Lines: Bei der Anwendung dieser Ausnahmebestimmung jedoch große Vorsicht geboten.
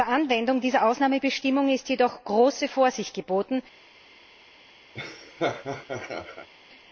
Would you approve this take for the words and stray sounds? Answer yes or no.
no